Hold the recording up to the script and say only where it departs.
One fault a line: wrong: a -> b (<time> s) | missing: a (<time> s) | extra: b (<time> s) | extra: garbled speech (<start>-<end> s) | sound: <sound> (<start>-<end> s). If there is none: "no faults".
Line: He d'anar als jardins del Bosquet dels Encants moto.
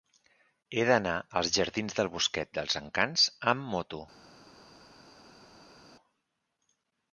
extra: amb (3.5 s)